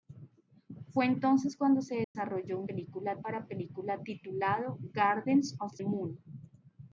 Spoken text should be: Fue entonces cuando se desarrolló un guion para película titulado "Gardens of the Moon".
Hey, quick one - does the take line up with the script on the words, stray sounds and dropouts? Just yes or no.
no